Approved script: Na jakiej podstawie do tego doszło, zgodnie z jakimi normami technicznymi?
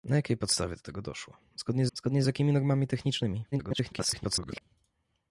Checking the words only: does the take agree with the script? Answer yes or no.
no